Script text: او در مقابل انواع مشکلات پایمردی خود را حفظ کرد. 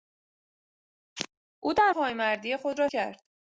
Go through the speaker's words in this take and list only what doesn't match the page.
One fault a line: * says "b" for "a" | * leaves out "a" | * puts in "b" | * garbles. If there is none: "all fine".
* leaves out "مقابل انواع مشکلات"
* leaves out "حفظ"